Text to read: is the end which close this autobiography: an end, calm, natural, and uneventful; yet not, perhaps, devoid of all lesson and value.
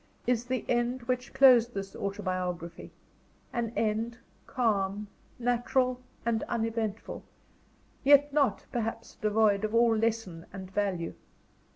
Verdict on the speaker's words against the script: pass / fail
pass